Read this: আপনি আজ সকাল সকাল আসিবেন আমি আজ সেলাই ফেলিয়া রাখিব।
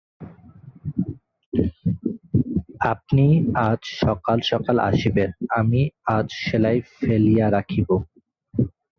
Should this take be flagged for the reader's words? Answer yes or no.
no